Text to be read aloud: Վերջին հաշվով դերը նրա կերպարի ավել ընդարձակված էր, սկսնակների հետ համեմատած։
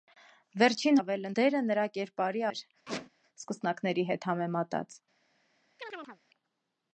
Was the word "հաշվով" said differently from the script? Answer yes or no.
yes